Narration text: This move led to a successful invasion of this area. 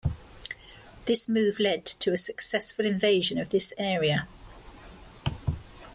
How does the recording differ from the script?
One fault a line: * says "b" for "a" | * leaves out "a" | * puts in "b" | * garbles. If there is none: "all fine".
all fine